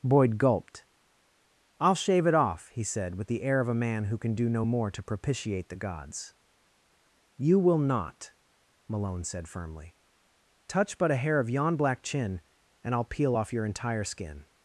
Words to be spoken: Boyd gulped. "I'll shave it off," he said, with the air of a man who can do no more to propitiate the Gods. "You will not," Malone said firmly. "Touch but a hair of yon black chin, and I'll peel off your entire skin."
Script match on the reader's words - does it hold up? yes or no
yes